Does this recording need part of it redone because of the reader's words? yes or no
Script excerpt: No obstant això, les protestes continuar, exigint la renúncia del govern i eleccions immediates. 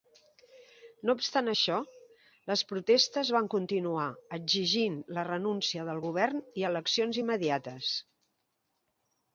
yes